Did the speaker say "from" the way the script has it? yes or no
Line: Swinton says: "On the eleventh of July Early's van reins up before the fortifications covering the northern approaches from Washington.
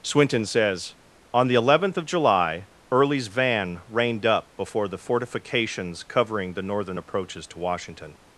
no